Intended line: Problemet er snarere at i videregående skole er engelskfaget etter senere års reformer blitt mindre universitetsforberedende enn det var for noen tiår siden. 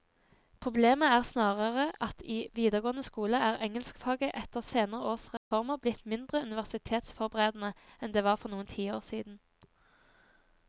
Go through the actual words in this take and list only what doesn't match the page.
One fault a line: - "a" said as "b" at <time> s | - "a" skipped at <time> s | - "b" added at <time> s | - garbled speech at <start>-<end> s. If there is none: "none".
none